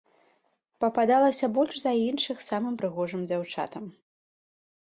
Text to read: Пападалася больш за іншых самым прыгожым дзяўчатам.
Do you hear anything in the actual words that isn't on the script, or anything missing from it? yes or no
no